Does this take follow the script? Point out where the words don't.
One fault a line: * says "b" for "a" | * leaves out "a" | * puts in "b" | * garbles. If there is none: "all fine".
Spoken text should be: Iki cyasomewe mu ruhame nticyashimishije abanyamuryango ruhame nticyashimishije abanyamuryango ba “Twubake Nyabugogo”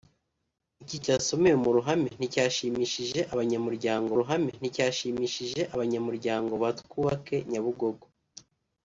all fine